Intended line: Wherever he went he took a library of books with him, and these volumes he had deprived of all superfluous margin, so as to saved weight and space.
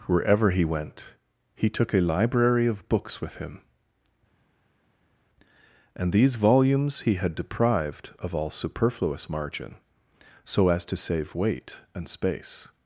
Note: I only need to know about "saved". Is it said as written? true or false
false